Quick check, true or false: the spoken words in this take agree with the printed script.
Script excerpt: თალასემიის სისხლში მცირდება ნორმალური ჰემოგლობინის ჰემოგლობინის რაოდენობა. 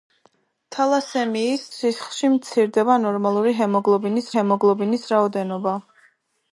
true